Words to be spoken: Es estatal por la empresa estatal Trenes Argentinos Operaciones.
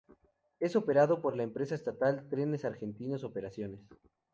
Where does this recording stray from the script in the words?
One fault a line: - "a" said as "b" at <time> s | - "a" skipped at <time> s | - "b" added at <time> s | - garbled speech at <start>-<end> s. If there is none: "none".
- "estatal" said as "operado" at 0.8 s